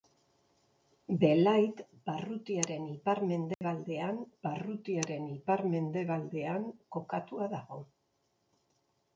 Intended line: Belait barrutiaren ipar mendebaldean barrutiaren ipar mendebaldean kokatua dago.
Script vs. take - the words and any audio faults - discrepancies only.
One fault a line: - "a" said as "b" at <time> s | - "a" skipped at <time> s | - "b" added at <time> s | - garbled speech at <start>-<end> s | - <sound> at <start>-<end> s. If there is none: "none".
- dropout at 3.5-3.6 s